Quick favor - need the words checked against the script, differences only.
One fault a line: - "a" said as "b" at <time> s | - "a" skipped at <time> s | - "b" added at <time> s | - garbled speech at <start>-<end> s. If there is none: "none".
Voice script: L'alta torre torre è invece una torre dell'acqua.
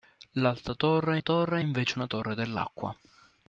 none